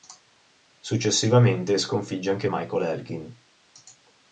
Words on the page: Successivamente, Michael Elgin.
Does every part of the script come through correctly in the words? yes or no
no